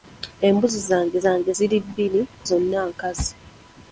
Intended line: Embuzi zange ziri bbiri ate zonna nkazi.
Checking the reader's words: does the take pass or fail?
fail